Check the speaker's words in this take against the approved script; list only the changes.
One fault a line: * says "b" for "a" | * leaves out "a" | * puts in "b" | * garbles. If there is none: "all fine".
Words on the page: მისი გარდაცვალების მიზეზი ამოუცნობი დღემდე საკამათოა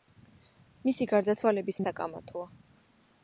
* leaves out "მიზეზი ამოუცნობი დღემდე"